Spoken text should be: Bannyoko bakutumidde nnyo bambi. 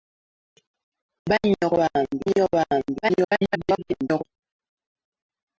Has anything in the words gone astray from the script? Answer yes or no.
yes